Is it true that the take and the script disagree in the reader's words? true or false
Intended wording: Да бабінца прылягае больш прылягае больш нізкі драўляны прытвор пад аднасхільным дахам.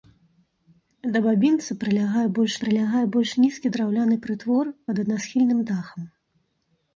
false